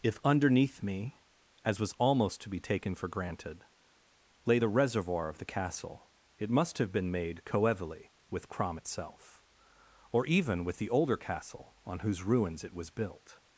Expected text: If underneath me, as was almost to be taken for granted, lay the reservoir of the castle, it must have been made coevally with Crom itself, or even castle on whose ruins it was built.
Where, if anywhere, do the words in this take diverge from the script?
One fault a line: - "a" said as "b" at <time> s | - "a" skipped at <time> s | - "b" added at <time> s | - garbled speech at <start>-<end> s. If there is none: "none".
- "with the older" added at 10.6 s